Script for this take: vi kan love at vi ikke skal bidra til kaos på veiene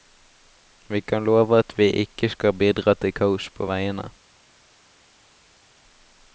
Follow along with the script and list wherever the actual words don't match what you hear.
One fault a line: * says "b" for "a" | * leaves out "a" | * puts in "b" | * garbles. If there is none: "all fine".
all fine